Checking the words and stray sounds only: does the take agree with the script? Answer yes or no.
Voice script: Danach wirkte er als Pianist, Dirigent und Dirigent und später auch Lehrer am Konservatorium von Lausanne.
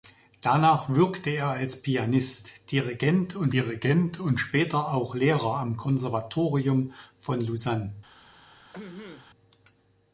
no